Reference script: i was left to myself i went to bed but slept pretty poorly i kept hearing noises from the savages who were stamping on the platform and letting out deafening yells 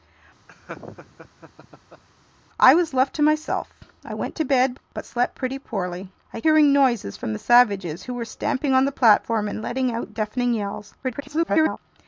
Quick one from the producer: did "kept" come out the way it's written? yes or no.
no